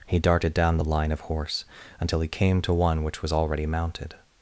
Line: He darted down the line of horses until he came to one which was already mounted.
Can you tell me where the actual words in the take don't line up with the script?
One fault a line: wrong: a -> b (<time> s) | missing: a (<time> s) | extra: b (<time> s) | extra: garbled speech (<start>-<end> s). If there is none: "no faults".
wrong: horses -> horse (1.2 s)